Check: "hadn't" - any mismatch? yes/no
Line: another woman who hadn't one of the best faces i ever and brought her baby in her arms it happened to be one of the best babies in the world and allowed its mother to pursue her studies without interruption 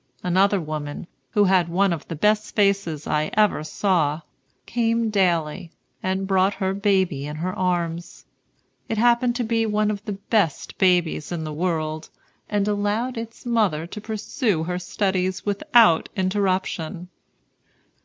yes